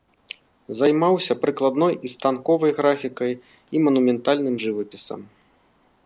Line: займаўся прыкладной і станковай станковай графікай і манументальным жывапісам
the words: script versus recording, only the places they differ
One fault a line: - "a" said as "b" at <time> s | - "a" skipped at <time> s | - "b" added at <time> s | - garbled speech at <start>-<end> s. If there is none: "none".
- "станковай" skipped at 2.7 s